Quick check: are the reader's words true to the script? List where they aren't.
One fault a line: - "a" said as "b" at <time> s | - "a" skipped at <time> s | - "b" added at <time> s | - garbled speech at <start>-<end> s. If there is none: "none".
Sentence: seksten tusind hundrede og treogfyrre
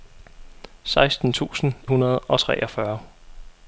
none